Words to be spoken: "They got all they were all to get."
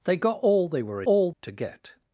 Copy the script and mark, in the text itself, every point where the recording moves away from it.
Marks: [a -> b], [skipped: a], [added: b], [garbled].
"They got all they were all to get."